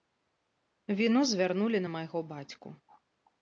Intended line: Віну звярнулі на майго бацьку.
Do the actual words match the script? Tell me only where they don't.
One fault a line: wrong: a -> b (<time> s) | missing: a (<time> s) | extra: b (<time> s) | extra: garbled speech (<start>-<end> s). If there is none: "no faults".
no faults